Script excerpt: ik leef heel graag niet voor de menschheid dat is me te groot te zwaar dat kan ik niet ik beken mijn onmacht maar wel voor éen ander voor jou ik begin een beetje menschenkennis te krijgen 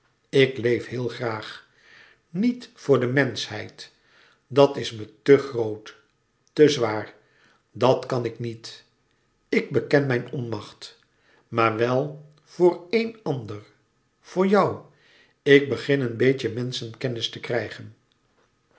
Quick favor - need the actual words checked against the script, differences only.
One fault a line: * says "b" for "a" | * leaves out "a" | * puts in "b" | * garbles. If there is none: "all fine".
all fine